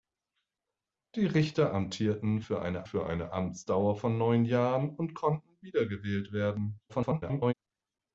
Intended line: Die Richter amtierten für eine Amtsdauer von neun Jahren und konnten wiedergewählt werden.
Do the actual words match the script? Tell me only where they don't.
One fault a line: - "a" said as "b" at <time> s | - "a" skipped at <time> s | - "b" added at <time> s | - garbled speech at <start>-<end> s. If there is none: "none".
- "für eine" added at 2.8 s
- garbled speech at 6.9-7.5 s